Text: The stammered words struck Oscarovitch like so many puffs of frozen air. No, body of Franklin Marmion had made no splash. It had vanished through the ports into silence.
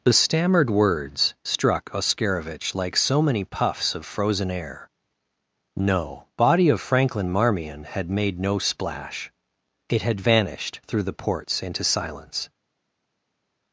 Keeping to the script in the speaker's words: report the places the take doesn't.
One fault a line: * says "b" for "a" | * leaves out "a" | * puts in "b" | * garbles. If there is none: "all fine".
all fine